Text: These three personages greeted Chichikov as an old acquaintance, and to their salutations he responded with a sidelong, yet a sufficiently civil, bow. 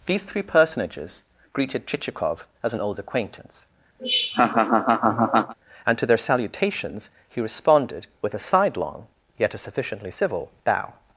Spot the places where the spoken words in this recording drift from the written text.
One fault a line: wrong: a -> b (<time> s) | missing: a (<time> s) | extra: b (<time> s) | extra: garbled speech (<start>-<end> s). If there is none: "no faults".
no faults